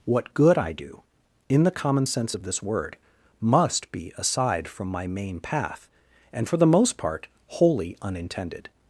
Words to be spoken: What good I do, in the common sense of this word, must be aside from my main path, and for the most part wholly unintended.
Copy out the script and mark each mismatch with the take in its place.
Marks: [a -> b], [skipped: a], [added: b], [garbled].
What good I do, in the common sense of this word, must be aside from my main path, and for the most part wholly unintended.